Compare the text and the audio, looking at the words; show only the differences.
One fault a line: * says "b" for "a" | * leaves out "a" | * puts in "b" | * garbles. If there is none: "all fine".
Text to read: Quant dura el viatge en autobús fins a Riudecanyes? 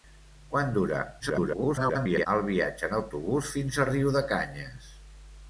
* garbles